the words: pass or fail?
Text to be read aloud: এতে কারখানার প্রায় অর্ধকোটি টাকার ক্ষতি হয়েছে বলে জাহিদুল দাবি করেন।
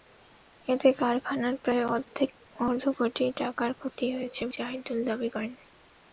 fail